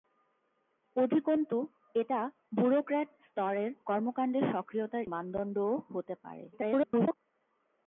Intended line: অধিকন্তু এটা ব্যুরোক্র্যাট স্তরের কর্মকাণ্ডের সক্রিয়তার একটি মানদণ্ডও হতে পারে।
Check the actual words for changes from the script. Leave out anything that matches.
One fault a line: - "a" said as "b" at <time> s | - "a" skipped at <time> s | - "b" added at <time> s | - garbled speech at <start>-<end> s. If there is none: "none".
- "একটি" skipped at 5.0 s
- garbled speech at 6.5-7.2 s